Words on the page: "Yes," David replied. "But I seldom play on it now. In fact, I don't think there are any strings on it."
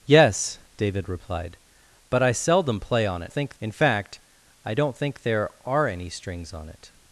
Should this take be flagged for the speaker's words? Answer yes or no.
yes